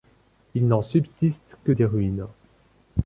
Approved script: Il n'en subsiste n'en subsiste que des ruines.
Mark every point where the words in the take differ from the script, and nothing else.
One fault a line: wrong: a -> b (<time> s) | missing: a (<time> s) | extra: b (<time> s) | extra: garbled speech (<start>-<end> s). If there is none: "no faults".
missing: n'en subsiste (1.6 s)